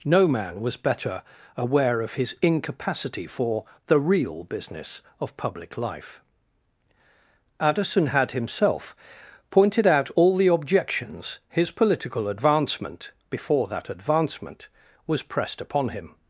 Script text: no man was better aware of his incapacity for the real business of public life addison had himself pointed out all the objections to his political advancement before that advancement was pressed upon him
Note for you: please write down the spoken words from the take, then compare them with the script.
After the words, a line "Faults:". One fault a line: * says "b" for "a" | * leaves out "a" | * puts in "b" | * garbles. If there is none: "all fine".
no man was better aware of his incapacity for the real business of public life addison had himself pointed out all the objections his political advancement before that advancement was pressed upon him
Faults:
* leaves out "to"